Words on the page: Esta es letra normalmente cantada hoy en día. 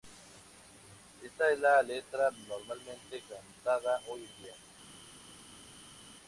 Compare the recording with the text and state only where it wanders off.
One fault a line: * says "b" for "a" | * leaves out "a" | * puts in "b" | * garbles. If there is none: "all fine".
* puts in "la"